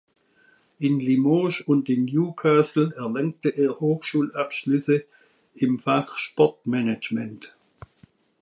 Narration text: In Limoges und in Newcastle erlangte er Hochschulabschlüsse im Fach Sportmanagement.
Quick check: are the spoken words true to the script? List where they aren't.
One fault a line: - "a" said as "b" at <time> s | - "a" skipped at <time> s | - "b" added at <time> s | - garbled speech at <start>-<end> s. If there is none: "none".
none